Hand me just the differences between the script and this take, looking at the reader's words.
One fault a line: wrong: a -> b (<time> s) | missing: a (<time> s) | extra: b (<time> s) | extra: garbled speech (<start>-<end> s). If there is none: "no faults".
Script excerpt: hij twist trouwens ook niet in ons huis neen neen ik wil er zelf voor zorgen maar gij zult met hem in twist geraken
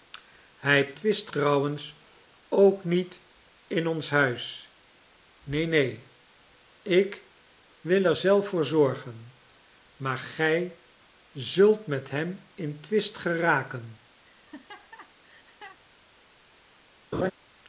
no faults